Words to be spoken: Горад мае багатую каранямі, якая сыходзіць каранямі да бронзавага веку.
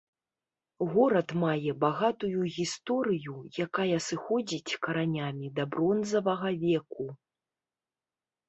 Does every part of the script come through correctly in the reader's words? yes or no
no